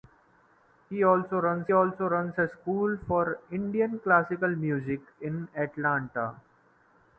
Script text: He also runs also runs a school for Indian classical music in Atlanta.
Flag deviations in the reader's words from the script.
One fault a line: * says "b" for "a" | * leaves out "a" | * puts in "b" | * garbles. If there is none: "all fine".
all fine